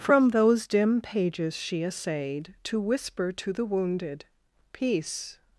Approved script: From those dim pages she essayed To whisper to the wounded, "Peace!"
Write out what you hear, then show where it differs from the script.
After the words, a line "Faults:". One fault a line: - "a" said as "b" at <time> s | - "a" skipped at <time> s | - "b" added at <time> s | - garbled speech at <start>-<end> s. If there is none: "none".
From those dim pages she essayed To whisper to the wounded, "Peace!"
Faults:
none